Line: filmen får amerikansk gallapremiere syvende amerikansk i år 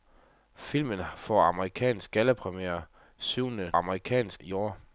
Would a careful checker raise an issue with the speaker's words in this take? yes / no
no